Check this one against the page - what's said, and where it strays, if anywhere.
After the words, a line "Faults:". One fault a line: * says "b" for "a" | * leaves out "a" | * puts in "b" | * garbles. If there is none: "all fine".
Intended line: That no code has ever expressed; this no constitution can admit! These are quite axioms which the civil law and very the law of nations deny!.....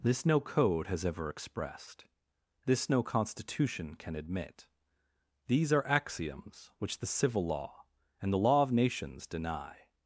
This no code has ever expressed; this no constitution can admit! These are axioms which the civil law and the law of nations deny!.....
Faults:
* says "This" for "That"
* leaves out "quite"
* leaves out "very"